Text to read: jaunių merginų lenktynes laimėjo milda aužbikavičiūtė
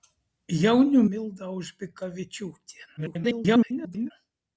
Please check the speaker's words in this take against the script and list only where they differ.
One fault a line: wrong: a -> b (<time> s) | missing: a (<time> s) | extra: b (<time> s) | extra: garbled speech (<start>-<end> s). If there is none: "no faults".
missing: merginų lenktynes laimėjo (1.0 s)
extra: garbled speech (3.0-4.1 s)